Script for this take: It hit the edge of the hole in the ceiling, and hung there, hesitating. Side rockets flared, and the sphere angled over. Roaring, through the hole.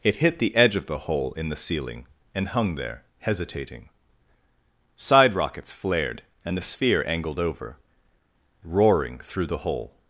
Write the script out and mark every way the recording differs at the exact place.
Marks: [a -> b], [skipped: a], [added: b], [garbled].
It hit the edge of the hole in the ceiling, and hung there, hesitating. Side rockets flared, and the sphere angled over. Roaring, through the hole.